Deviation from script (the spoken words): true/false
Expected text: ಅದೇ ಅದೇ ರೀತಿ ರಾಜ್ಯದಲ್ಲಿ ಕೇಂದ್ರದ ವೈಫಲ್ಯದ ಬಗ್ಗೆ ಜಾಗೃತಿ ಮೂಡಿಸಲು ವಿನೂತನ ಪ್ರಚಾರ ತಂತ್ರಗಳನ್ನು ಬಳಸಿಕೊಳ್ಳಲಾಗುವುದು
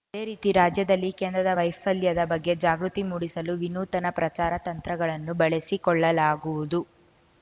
true